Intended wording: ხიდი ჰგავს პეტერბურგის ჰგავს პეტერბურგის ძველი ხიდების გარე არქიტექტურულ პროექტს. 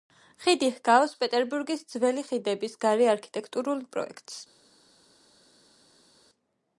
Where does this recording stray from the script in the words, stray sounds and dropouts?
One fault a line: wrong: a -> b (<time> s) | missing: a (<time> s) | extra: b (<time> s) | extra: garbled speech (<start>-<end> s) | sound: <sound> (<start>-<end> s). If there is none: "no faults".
missing: ჰგავს პეტერბურგის (1.8 s)